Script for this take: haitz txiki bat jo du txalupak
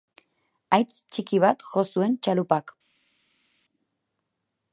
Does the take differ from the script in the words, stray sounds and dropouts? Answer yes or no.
yes